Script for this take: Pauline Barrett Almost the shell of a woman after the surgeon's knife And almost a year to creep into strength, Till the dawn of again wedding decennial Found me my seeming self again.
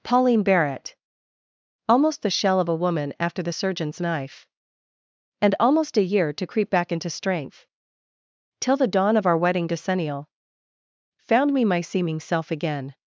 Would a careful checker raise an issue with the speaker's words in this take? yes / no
yes